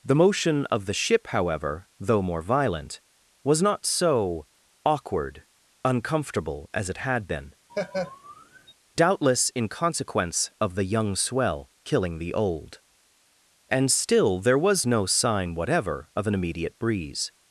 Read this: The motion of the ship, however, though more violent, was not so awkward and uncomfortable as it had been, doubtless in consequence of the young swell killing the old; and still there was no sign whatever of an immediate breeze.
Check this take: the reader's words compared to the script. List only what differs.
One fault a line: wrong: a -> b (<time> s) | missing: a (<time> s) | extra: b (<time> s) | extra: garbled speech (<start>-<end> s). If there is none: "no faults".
missing: and (5.4 s)